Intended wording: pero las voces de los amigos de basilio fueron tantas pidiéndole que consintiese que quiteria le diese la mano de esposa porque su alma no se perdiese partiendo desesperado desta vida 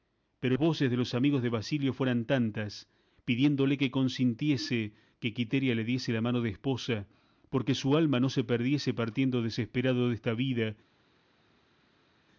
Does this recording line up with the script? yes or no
no